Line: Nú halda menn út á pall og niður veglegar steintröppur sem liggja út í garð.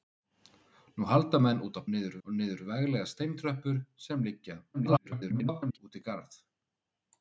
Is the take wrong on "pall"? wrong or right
wrong